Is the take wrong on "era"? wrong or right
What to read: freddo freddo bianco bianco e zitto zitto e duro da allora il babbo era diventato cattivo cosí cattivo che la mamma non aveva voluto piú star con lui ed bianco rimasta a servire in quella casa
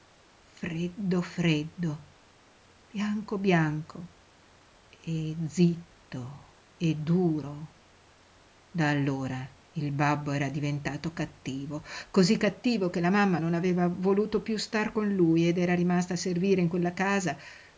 right